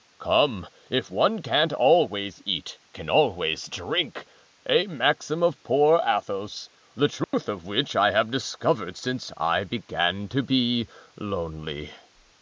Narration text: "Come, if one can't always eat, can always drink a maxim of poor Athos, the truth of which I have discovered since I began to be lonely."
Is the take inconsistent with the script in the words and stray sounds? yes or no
yes